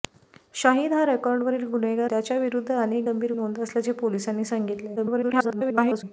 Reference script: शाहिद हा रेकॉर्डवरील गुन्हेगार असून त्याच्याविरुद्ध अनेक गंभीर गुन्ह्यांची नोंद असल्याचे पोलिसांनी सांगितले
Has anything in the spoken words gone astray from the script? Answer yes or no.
yes